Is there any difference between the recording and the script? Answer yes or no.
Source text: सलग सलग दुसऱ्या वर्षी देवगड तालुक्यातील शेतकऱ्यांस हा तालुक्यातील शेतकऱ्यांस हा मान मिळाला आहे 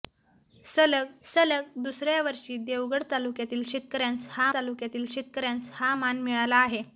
no